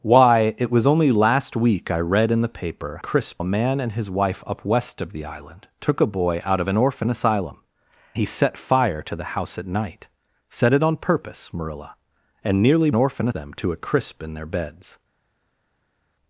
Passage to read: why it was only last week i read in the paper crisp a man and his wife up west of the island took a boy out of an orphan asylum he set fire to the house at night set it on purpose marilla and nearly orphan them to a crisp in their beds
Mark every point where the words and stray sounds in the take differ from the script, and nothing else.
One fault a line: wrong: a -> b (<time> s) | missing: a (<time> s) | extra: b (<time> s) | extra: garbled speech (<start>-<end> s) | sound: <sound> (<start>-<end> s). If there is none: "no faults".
no faults